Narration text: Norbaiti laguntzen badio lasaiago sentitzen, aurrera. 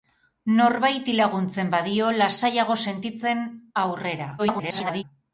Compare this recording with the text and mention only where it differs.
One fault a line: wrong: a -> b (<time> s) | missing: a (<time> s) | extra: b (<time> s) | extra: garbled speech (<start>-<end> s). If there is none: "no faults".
extra: garbled speech (4.4-5.0 s)